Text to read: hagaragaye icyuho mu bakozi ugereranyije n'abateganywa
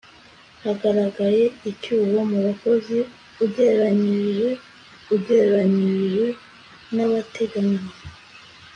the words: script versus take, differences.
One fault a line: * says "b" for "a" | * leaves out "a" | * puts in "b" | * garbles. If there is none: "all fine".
* puts in "ugereranyije"